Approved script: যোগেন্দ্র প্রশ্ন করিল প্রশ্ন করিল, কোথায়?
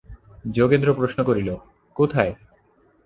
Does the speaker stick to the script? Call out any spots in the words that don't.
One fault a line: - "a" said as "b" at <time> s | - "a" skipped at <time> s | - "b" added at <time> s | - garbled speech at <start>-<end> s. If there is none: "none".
- "প্রশ্ন করিল" skipped at 1.5 s